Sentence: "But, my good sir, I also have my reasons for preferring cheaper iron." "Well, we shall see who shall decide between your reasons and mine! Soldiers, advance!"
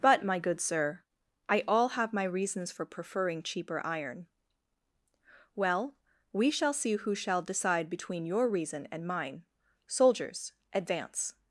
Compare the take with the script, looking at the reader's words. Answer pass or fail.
fail